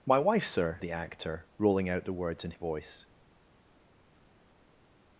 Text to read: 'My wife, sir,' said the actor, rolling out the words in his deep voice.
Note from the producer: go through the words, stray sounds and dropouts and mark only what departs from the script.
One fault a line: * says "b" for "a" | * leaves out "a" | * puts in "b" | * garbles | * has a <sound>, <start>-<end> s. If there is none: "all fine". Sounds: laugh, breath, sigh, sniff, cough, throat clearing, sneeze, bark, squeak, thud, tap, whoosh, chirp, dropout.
* leaves out "said"
* leaves out "his deep"